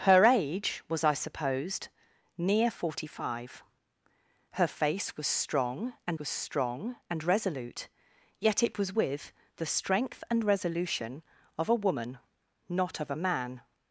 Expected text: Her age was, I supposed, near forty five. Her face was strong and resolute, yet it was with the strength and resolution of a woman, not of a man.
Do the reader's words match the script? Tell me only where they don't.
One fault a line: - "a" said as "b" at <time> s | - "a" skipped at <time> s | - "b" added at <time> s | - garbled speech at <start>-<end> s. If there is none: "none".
- "was strong and" added at 6.2 s